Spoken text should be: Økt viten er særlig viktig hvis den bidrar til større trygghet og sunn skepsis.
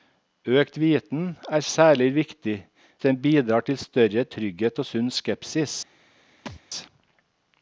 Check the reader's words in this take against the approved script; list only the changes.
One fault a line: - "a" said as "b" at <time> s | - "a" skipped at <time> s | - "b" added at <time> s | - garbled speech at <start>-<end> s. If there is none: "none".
- "hvis" skipped at 2.7 s